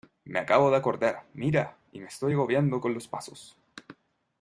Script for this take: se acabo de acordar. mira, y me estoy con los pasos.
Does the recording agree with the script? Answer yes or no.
no